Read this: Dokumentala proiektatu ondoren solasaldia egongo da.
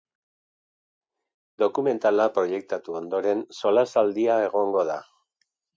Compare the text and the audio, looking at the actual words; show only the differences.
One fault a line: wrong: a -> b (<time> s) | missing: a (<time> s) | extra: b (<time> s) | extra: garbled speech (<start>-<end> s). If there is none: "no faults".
no faults